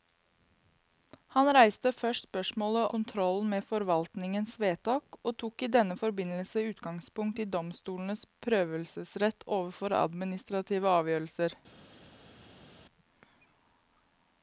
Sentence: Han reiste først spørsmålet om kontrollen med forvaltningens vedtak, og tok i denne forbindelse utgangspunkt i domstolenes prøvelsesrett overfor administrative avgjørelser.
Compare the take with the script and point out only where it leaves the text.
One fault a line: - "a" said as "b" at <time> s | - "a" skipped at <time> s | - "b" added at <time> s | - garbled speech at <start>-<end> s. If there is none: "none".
- "om" skipped at 2.9 s